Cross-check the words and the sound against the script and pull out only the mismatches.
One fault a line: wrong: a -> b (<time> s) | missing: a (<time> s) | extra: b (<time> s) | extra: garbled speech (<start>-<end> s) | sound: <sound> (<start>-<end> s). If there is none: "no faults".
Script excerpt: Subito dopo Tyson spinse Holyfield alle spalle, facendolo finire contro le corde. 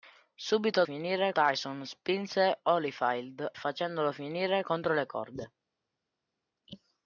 wrong: dopo -> finire (0.8 s)
missing: alle spalle (3.5 s)